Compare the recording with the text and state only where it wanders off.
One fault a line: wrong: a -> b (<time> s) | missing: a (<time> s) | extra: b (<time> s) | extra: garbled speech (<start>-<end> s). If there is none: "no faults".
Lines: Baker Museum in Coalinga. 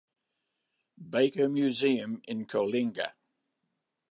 no faults